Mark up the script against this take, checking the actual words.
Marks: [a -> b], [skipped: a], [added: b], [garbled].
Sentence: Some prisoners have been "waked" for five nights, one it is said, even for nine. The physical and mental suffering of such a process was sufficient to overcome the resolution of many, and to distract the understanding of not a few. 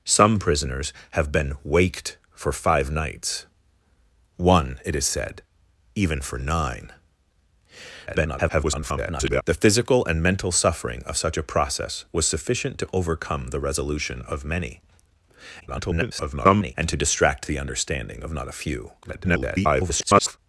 Some prisoners have been "waked" for five nights, one it is said, even for nine. [garbled] The physical and mental suffering of such a process was sufficient to overcome the resolution of many, [garbled] and to distract the understanding of not a few. [garbled]